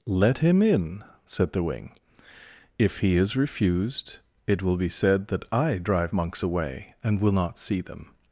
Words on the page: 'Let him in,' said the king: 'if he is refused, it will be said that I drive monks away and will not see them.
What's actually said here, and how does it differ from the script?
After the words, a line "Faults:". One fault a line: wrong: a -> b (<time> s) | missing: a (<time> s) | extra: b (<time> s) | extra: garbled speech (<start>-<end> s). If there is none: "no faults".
'Let him in,' said the wing: 'if he is refused, it will be said that I drive monks away and will not see them.
Faults:
wrong: king -> wing (1.6 s)